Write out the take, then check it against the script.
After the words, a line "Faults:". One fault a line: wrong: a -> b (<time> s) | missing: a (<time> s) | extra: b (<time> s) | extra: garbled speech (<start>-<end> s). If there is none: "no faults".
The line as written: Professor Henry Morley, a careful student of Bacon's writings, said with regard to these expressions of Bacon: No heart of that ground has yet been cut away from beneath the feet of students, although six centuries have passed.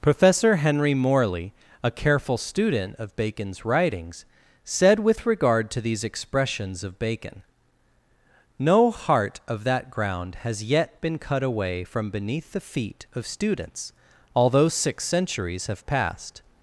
Professor Henry Morley, a careful student of Bacon's writings, said with regard to these expressions of Bacon: No heart of that ground has yet been cut away from beneath the feet of students, although six centuries have passed.
Faults:
no faults